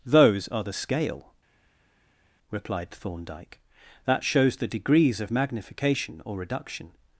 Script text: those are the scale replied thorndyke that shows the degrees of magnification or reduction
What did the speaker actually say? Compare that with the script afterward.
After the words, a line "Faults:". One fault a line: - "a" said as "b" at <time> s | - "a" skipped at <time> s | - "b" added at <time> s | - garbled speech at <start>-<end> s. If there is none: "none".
those are the scale replied thorndyke that shows the degrees of magnification or reduction
Faults:
none